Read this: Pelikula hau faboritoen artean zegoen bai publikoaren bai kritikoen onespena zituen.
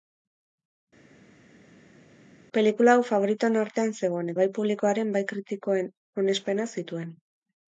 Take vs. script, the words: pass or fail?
pass